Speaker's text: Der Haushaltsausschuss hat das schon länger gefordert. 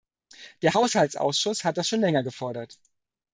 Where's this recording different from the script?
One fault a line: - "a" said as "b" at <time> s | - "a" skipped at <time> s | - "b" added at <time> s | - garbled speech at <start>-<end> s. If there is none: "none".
none